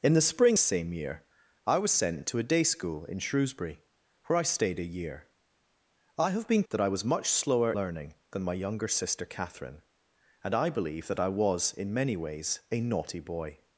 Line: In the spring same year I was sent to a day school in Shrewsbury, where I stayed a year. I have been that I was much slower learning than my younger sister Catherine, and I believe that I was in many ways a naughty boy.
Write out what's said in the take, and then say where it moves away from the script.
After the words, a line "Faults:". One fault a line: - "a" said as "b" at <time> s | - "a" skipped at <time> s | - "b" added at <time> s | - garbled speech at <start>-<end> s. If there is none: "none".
In the spring same year I was sent to a day school in Shrewsbury, where I stayed a year. I have been that I was much slower learning than my younger sister Catherine, and I believe that I was in many ways a naughty boy.
Faults:
none